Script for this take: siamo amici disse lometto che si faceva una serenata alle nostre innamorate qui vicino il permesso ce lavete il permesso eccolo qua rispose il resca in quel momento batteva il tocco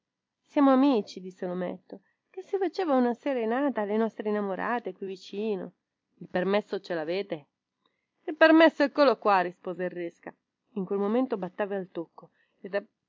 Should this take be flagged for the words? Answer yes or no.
no